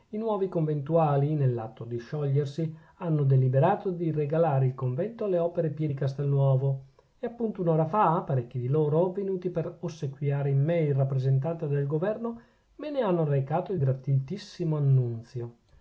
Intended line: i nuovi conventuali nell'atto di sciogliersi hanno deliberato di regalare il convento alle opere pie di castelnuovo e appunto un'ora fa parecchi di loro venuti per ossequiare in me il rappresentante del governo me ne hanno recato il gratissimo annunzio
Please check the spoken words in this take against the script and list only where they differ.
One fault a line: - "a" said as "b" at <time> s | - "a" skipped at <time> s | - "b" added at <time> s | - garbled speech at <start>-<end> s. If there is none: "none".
none